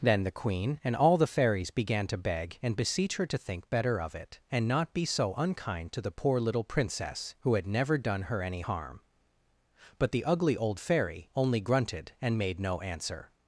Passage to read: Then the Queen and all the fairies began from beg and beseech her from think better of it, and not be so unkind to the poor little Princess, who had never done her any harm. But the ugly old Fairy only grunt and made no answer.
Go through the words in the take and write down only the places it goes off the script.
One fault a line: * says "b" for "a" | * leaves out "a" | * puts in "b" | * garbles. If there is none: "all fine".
* says "to" for "from"
* says "to" for "from"
* says "grunted" for "grunt"